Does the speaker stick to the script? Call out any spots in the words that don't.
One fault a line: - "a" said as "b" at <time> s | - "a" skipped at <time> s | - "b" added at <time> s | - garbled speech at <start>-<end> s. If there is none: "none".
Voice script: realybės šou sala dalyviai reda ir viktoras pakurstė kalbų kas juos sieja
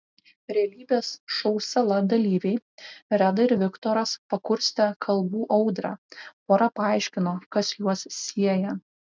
- "audrą pora paaiškino" added at 5.6 s